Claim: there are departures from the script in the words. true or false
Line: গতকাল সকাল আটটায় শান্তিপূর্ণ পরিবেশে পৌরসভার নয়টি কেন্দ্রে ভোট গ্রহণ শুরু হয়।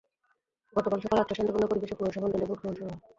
true